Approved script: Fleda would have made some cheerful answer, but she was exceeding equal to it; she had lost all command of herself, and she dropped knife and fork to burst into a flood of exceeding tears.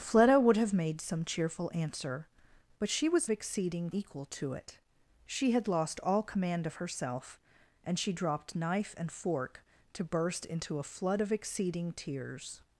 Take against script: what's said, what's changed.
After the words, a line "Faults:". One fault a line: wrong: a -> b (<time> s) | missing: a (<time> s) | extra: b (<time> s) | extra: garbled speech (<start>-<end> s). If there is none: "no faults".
Fleda would have made some cheerful answer, but she was exceeding equal to it; she had lost all command of herself, and she dropped knife and fork to burst into a flood of exceeding tears.
Faults:
no faults